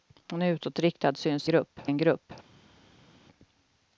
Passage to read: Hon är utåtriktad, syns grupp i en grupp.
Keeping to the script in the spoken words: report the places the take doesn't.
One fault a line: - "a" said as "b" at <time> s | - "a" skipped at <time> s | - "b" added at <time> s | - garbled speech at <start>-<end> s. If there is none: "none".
none